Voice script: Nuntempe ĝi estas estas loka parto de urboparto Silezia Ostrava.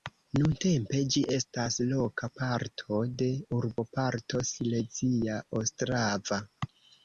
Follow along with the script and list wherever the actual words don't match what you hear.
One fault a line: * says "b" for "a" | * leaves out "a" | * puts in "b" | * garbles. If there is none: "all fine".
* leaves out "estas"